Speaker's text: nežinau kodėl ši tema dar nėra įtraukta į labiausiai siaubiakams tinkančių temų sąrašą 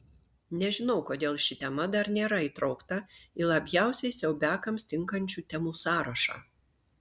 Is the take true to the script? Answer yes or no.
yes